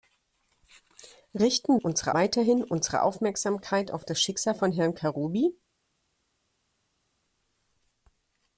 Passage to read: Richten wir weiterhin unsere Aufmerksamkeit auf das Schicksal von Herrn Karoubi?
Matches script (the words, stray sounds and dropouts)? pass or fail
fail